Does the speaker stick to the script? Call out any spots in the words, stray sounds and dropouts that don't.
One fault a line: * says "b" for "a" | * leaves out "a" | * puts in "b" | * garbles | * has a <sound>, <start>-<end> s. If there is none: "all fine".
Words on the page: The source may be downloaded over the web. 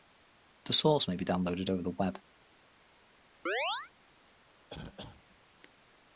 * has a chirp, 3.5-3.9 s
* has a cough, 4.7-5.2 s